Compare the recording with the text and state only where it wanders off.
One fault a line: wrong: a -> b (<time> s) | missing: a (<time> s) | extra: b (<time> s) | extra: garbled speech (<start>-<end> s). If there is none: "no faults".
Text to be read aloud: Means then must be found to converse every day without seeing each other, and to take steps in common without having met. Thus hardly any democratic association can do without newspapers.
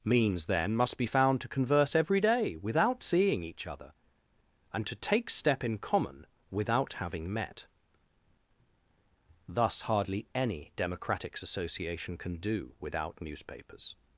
wrong: steps -> step (5.3 s)